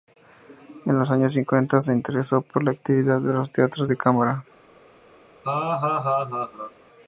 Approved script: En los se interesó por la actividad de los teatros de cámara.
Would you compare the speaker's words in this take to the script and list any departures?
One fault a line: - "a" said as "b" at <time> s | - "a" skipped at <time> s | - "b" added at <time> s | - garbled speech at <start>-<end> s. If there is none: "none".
- "años cincuenta" added at 1.1 s